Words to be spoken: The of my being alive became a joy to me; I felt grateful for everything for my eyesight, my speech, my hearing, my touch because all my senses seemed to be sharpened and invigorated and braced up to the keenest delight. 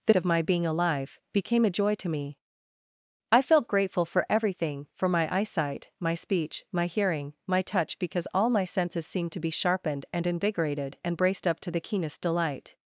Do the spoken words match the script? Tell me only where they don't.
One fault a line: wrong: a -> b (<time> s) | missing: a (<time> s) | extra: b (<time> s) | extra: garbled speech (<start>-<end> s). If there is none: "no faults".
no faults